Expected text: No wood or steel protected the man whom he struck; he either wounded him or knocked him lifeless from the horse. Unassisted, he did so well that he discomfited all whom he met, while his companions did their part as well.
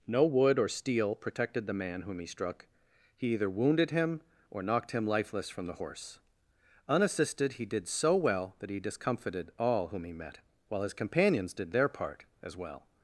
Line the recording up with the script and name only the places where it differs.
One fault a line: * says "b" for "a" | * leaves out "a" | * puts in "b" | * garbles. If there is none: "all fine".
all fine